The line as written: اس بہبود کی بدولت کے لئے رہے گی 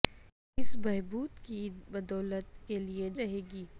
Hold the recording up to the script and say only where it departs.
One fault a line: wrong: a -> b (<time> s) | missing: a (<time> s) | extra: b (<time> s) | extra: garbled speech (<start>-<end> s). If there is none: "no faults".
no faults